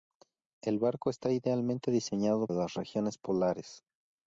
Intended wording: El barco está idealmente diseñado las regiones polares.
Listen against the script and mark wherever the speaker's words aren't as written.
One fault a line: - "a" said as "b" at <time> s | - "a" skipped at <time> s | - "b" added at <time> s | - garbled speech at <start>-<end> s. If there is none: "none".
none